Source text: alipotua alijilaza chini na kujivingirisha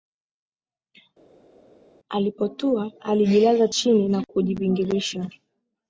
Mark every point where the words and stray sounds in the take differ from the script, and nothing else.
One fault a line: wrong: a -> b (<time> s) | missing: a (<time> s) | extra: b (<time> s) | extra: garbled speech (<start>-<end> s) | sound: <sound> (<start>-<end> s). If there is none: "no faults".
no faults